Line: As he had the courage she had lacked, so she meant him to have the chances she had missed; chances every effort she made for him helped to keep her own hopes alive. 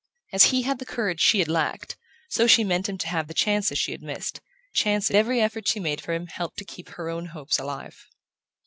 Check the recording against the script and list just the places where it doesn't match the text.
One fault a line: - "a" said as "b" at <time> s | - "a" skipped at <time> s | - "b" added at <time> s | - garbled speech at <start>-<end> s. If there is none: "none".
none